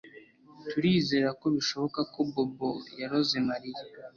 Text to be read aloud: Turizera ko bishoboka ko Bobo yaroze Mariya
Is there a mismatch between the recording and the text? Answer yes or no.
no